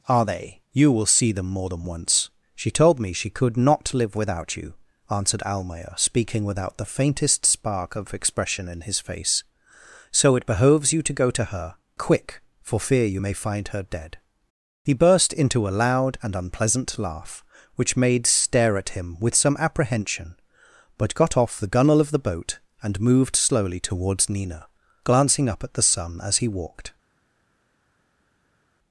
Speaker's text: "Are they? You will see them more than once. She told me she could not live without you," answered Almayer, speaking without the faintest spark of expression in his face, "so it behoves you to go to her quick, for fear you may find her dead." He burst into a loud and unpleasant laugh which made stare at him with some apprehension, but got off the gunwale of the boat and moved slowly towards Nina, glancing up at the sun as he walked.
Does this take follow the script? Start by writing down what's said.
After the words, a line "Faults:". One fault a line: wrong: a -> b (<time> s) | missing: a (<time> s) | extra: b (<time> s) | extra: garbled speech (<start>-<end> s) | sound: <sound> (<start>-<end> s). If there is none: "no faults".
"Are they? You will see them more than once. She told me she could not live without you," answered Almayer, speaking without the faintest spark of expression in his face, "so it behoves you to go to her quick, for fear you may find her dead." He burst into a loud and unpleasant laugh which made stare at him with some apprehension, but got off the gunwale of the boat and moved slowly towards Nina, glancing up at the sun as he walked.
Faults:
no faults